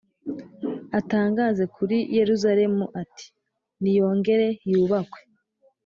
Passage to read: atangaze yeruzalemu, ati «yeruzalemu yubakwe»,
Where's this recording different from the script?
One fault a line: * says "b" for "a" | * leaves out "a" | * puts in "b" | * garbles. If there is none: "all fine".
* puts in "kuri"
* says "niyongere" for "yeruzalemu"